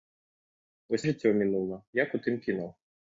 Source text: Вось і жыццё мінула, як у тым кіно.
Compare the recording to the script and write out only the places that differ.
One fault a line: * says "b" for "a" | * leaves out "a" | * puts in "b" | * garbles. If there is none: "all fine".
all fine